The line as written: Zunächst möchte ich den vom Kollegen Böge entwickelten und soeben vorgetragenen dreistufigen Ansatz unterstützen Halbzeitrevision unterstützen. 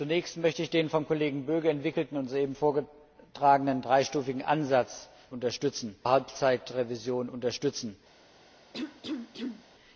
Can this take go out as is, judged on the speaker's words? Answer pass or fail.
pass